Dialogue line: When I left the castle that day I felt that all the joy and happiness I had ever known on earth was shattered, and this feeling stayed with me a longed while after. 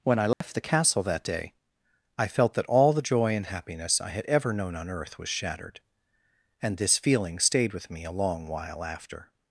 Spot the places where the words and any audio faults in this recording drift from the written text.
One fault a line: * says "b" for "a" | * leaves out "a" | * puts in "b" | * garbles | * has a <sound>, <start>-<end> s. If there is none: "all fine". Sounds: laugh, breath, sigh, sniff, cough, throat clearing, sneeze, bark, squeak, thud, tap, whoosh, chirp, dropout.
* has a dropout, 0.3-0.4 s
* says "long" for "longed"